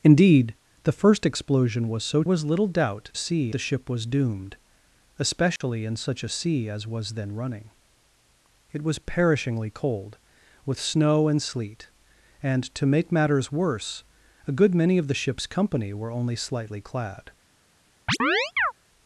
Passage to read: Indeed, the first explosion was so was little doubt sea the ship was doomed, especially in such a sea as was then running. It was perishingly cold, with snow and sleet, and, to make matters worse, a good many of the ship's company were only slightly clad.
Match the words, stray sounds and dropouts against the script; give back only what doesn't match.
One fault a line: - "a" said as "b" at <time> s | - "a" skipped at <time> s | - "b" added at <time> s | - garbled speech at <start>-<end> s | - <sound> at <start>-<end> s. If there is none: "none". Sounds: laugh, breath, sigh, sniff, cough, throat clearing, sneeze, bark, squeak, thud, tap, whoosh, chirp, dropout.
- dropout at 5.6-5.6 s
- chirp at 18.1-18.7 s